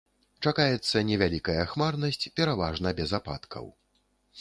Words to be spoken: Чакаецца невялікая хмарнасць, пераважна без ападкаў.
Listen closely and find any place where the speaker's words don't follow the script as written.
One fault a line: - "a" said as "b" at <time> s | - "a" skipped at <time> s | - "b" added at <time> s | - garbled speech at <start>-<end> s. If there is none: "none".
none